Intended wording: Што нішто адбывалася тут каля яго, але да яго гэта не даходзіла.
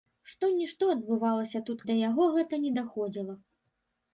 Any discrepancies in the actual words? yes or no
yes